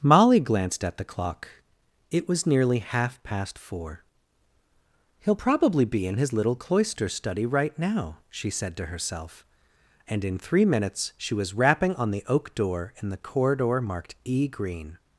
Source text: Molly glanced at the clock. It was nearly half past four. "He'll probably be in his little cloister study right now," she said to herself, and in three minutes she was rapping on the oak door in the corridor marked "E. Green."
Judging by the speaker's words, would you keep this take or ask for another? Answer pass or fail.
pass